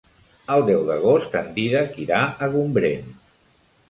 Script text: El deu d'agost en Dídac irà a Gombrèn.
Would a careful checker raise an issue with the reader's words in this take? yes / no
no